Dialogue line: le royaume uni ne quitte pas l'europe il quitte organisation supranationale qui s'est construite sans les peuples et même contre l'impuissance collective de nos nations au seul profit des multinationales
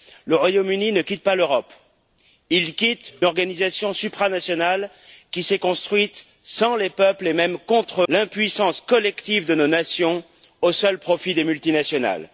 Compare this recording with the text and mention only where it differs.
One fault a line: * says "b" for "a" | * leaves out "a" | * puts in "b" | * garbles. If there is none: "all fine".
all fine